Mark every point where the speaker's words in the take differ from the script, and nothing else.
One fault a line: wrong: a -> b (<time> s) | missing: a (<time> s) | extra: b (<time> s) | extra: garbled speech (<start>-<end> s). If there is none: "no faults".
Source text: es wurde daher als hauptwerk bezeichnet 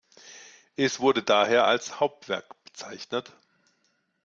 no faults